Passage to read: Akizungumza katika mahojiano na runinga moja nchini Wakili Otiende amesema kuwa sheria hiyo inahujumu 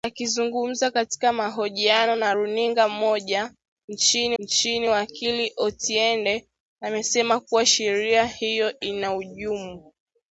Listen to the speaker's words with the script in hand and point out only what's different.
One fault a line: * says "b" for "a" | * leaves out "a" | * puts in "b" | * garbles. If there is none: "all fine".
* puts in "nchini"